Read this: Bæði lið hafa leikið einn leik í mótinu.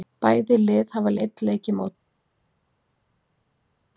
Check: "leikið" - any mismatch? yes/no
yes